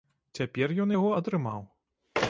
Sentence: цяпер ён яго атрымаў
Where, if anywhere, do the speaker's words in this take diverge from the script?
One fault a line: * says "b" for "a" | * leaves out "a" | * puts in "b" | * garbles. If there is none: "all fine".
all fine